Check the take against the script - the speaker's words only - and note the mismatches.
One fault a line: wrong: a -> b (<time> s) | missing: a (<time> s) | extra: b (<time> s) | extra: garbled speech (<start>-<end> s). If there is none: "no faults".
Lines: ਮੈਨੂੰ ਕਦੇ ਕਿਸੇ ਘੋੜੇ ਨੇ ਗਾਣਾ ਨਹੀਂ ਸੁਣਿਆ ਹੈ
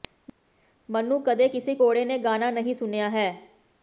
no faults